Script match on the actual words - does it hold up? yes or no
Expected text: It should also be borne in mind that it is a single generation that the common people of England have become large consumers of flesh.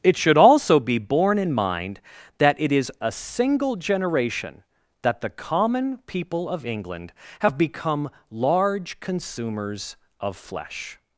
yes